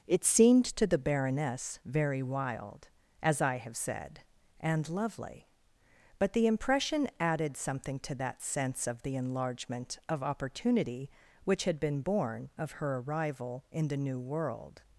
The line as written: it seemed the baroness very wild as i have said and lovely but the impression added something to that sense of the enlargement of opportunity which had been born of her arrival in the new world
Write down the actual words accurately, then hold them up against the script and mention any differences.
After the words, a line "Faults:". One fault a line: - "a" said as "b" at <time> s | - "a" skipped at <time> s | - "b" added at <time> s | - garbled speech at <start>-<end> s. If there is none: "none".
it seemed to the baroness very wild as i have said and lovely but the impression added something to that sense of the enlargement of opportunity which had been born of her arrival in the new world
Faults:
- "to" added at 0.7 s